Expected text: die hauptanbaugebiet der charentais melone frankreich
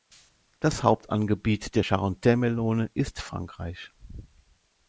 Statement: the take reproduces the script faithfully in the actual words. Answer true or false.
false